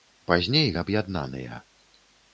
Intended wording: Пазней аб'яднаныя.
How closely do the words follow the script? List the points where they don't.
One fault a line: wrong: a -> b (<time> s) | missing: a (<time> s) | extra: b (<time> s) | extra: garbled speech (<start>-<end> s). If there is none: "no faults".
no faults